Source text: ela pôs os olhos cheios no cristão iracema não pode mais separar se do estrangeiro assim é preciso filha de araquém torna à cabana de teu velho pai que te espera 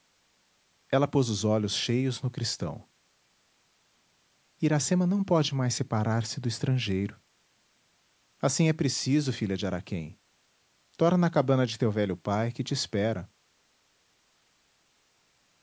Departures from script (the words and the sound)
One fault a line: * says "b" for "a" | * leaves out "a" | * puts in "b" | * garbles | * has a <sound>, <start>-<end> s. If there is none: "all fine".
all fine